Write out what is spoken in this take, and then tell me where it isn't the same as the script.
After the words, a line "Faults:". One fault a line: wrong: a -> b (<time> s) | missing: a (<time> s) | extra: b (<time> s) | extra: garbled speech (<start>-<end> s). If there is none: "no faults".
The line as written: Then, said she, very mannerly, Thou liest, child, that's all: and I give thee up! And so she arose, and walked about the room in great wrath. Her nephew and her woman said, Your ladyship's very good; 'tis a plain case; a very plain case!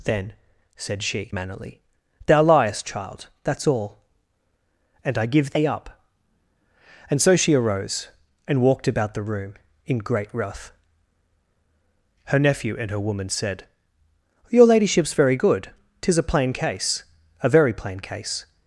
Then, said she, mannerly, Thou liest, child, that's all: and I give thee up! And so she arose, and walked about the room in great wrath. Her nephew and her woman said, Your ladyship's very good; 'tis a plain case; a very plain case!
Faults:
missing: very (1.3 s)